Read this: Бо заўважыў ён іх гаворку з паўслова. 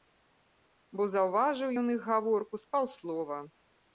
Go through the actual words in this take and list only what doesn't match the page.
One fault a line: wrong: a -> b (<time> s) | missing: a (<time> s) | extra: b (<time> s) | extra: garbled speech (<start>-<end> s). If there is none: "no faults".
no faults